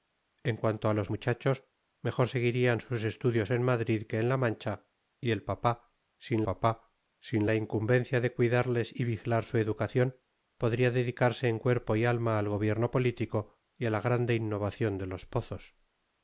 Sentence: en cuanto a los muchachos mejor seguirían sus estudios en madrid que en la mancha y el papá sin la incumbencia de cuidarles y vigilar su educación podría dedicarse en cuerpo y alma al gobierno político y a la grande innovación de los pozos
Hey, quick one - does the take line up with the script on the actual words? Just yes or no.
no